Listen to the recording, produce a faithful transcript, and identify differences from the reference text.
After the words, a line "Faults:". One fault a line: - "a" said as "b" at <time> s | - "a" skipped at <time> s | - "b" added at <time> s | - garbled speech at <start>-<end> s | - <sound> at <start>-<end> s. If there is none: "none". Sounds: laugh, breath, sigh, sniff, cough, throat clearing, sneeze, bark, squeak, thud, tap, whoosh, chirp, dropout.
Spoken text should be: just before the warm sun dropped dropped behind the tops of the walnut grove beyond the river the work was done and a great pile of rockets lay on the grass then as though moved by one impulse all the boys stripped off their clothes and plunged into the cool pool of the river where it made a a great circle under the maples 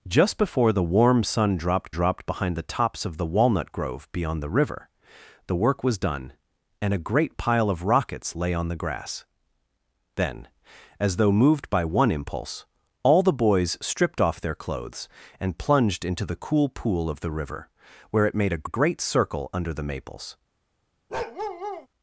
just before the warm sun dropped dropped behind the tops of the walnut grove beyond the river the work was done and a great pile of rockets lay on the grass then as though moved by one impulse all the boys stripped off their clothes and plunged into the cool pool of the river where it made a a great circle under the maples
Faults:
- bark at 21.1-21.9 s